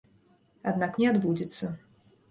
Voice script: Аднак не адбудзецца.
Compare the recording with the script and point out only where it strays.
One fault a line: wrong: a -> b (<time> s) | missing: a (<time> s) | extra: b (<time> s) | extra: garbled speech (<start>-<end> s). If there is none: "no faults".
no faults